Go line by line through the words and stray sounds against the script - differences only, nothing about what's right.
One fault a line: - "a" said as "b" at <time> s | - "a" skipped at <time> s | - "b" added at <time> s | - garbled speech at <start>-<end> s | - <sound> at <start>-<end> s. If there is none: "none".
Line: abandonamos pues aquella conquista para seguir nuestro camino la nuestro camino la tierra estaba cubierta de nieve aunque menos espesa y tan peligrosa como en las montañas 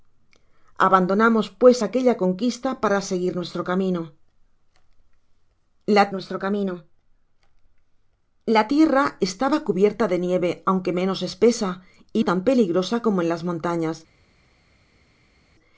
none